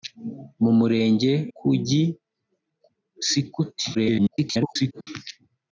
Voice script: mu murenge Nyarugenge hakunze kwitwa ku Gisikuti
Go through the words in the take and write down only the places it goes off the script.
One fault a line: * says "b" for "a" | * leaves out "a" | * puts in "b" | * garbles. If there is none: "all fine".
* leaves out "Nyarugenge hakunze kwitwa"
* garbles